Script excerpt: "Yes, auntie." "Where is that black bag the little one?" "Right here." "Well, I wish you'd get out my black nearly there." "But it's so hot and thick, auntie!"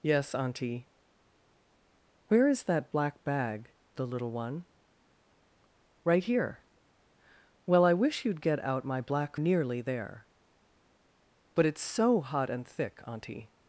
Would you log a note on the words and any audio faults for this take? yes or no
no